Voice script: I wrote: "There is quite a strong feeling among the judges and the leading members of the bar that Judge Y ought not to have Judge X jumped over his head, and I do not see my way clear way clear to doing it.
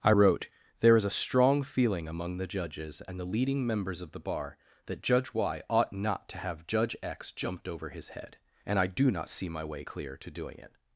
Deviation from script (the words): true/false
true